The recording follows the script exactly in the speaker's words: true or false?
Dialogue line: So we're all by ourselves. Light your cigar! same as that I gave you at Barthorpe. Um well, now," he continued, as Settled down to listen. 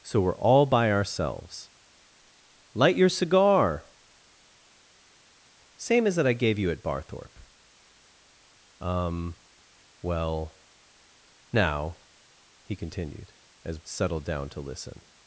true